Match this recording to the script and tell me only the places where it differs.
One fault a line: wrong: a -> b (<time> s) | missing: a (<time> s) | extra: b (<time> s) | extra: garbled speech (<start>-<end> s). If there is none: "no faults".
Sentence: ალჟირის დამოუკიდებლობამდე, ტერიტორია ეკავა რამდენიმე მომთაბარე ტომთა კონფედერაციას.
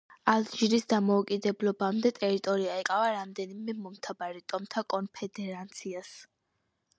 no faults